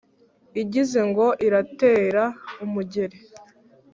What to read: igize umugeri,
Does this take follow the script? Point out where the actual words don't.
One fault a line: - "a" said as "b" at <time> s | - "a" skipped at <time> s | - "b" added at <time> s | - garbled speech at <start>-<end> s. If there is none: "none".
- "ngo iratera" added at 1.1 s